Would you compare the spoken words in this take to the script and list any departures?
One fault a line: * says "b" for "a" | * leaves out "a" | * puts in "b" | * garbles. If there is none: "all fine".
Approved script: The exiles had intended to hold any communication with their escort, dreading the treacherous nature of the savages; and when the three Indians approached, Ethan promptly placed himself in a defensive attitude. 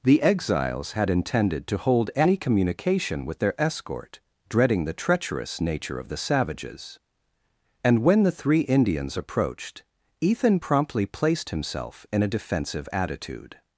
all fine